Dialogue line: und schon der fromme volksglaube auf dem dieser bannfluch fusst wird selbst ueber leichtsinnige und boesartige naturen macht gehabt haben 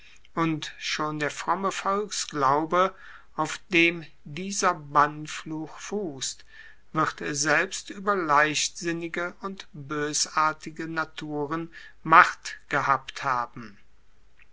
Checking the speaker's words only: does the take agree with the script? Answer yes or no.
yes